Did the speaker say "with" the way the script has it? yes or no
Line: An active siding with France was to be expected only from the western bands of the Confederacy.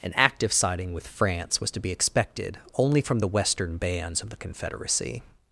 yes